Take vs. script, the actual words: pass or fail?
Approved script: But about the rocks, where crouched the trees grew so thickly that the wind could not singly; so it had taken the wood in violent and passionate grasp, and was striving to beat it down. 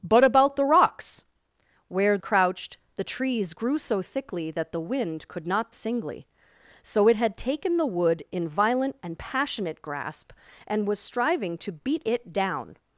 pass